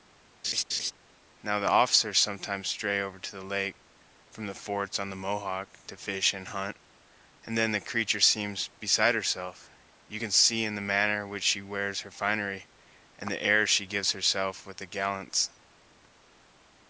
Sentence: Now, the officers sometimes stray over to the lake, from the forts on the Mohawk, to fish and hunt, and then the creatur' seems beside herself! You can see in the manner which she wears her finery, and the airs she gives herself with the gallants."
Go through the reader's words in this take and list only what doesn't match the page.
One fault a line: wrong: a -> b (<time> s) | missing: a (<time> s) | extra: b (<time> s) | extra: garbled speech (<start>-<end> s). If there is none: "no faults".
no faults